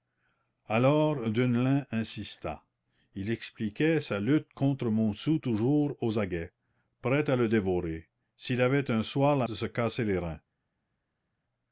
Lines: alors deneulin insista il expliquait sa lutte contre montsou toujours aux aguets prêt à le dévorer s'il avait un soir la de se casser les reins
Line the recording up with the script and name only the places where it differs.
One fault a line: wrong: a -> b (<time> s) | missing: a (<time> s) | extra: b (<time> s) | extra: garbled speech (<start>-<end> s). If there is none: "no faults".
no faults